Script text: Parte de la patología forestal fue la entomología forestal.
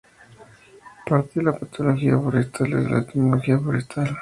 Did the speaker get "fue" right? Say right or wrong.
wrong